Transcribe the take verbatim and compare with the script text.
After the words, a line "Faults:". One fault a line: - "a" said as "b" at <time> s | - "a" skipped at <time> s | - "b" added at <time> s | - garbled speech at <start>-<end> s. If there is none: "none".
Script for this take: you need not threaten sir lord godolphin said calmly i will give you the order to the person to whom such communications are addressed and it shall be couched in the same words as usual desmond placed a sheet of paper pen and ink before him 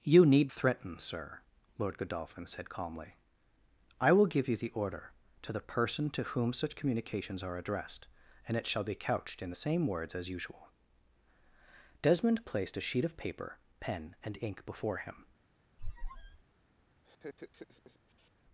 you need threaten sir lord godolphin said calmly i will give you the order to the person to whom such communications are addressed and it shall be couched in the same words as usual desmond placed a sheet of paper pen and ink before him
Faults:
- "not" skipped at 0.5 s